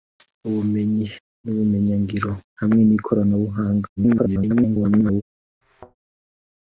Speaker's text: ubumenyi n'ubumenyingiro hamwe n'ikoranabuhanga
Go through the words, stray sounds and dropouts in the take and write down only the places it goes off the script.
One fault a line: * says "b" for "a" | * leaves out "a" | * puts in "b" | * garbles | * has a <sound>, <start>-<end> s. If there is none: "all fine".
* garbles
* has a thud, 5.6-6.0 s